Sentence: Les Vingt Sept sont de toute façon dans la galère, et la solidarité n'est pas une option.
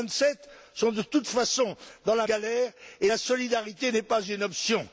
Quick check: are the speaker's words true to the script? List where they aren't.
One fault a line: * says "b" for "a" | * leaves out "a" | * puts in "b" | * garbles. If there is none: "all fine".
all fine